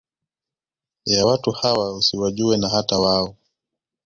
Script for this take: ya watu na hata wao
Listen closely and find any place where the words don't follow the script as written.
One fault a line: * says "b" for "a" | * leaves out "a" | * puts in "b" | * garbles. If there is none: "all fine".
* puts in "hawa usiwajue"